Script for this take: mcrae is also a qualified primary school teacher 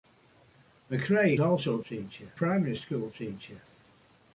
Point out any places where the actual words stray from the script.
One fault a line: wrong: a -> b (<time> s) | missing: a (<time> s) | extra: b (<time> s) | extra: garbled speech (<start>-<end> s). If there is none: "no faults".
missing: is (1.4 s)
wrong: qualified -> teacher (1.8 s)